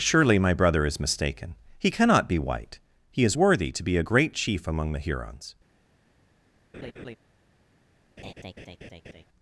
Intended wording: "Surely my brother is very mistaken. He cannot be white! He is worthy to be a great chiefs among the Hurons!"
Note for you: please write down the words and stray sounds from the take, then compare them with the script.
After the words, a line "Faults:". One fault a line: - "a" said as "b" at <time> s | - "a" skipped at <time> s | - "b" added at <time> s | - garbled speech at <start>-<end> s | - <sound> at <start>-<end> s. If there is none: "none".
"Surely my brother is mistaken. He cannot be white! He is worthy to be a great chief among the Hurons!"
Faults:
- "very" skipped at 1.0 s
- "chiefs" said as "chief" at 4.3 s
- laugh at 6.7-7.2 s
- laugh at 8.2-9.2 s